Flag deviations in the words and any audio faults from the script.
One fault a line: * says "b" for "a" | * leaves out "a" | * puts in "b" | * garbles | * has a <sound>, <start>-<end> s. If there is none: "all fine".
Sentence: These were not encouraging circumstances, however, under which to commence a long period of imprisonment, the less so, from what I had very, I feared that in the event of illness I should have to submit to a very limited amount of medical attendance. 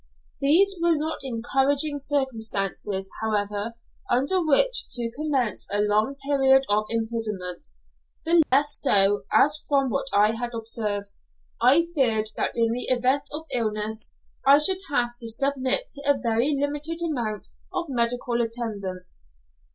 * has a dropout, 8.4-8.5 s
* puts in "as"
* says "observed" for "very"